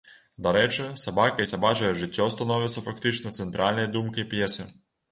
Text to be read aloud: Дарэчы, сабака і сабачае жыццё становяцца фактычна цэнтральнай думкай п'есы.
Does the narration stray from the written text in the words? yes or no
no